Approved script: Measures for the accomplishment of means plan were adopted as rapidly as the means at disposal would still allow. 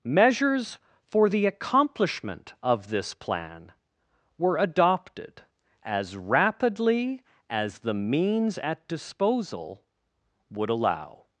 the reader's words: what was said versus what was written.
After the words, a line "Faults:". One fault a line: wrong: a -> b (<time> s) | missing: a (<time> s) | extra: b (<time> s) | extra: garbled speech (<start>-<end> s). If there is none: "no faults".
Measures for the accomplishment of this plan were adopted as rapidly as the means at disposal would allow.
Faults:
wrong: means -> this (2.9 s)
missing: still (10.7 s)